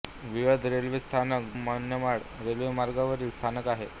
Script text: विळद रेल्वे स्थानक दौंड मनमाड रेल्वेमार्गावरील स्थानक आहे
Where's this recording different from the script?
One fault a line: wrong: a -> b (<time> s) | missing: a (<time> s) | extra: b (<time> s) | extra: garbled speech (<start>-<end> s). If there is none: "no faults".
missing: दौंड (1.5 s)